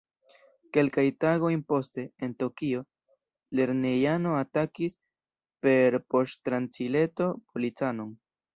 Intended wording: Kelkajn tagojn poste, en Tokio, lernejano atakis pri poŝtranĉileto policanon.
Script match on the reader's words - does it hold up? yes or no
no